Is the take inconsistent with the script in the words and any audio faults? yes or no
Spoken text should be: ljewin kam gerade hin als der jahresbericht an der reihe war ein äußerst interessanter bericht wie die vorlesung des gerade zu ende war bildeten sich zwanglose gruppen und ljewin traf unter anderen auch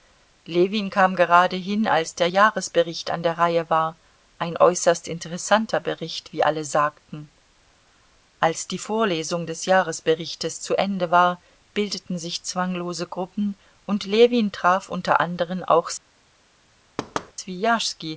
yes